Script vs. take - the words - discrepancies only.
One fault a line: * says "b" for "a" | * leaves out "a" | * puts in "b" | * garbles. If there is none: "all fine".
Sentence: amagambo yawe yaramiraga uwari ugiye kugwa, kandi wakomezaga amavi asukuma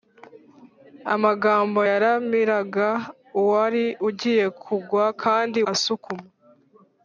* leaves out "yawe"
* leaves out "wakomezaga amavi"